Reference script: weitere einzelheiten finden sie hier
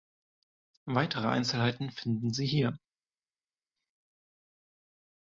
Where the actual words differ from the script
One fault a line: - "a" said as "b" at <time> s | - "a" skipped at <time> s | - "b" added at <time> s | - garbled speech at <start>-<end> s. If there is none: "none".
none